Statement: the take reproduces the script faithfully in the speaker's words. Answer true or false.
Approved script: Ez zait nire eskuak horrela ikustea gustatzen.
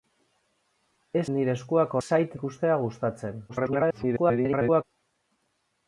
false